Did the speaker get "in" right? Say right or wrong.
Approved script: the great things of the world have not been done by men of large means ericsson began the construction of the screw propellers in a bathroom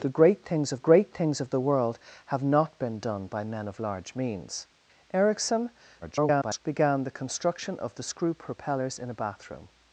right